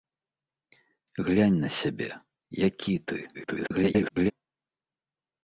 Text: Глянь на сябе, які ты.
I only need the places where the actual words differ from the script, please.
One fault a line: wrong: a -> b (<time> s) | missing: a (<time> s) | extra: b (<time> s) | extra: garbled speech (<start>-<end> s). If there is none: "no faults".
extra: garbled speech (3.3-4.3 s)